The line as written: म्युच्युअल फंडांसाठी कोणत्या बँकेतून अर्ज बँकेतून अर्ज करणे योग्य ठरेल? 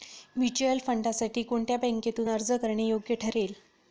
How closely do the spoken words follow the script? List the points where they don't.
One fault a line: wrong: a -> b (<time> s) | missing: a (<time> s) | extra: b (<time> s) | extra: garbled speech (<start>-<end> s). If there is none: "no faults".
missing: बँकेतून अर्ज (2.5 s)